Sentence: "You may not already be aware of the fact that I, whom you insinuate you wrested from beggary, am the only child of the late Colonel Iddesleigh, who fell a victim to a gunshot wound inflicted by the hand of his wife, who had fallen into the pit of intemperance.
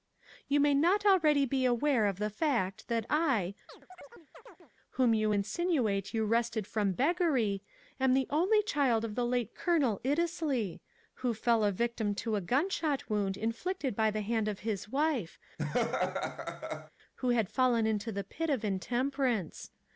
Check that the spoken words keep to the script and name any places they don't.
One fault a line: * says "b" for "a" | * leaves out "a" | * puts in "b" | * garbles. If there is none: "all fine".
all fine